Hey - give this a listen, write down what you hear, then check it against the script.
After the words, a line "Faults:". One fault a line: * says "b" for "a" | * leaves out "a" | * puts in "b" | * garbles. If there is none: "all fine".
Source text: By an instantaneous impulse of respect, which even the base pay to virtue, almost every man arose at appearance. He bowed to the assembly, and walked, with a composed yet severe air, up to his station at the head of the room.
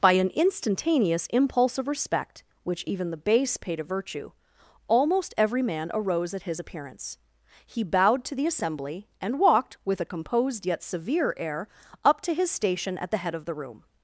By an instantaneous impulse of respect, which even the base pay to virtue, almost every man arose at his appearance. He bowed to the assembly, and walked, with a composed yet severe air, up to his station at the head of the room.
Faults:
* puts in "his"